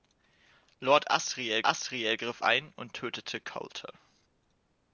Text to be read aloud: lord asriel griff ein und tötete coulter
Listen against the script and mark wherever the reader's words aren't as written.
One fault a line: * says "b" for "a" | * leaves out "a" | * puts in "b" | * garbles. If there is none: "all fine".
* puts in "asriel"